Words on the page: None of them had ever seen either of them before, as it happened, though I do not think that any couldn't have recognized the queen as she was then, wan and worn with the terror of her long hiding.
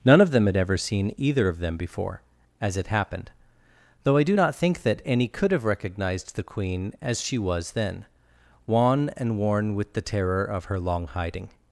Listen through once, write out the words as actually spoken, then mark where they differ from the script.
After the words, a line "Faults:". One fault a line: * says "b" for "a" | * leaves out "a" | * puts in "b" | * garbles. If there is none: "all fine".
None of them had ever seen either of them before, as it happened, though I do not think that any could have recognized the queen as she was then, wan and worn with the terror of her long hiding.
Faults:
* says "could" for "couldn't"